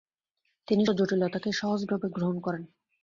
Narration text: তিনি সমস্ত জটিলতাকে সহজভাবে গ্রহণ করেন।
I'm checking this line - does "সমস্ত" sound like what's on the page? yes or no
no